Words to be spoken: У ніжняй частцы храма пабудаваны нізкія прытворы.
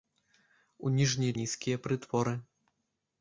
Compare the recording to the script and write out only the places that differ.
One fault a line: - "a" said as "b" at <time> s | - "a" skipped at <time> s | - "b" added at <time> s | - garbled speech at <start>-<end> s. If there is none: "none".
- "частцы храма пабудаваны" skipped at 1.3 s